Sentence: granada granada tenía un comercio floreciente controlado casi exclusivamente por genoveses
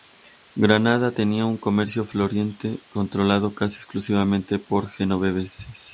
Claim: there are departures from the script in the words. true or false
true